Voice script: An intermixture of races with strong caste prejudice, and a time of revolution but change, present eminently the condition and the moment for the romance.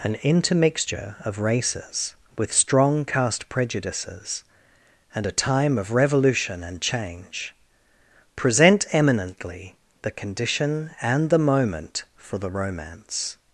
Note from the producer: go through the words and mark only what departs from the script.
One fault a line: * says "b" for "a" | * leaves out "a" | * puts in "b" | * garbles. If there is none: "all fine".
* says "prejudices" for "prejudice"
* says "and" for "but"